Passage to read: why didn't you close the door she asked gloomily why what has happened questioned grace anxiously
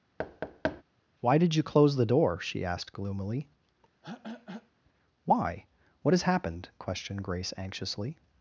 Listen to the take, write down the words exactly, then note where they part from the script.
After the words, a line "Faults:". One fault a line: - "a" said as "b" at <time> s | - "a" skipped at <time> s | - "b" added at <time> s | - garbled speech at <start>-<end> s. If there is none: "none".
why did you close the door she asked gloomily why what has happened questioned grace anxiously
Faults:
- "didn't" said as "did" at 1.4 s